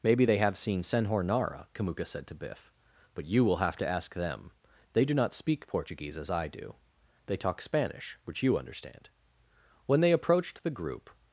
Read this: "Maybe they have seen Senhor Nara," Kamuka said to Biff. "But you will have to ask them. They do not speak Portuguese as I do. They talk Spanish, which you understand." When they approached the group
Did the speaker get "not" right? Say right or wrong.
right